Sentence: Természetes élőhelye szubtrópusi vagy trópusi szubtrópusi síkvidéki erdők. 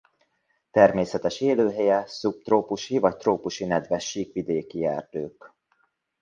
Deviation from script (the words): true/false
true